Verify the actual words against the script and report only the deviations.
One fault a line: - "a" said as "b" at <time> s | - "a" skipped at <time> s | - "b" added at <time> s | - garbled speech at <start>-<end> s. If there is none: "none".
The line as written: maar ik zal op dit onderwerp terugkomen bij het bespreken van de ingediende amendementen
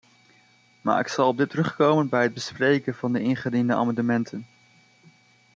- "onderwerp" skipped at 1.5 s